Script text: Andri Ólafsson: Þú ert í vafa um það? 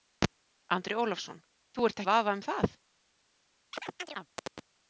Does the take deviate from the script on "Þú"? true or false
false